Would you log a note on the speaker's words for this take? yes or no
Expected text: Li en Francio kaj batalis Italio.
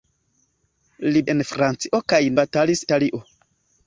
no